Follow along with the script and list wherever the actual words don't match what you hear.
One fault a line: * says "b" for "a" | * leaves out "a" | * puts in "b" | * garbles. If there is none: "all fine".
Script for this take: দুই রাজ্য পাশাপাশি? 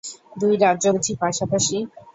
* puts in "বুঝি"